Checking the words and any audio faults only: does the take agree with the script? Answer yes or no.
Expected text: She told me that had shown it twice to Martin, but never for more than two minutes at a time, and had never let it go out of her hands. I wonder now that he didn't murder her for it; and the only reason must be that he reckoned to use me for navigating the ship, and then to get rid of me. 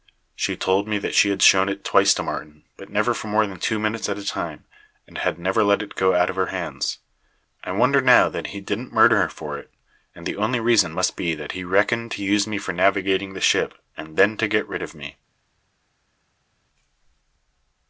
no